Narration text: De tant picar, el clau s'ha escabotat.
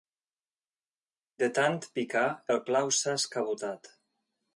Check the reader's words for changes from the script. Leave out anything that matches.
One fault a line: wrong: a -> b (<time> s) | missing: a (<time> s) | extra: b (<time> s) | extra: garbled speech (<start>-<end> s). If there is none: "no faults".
no faults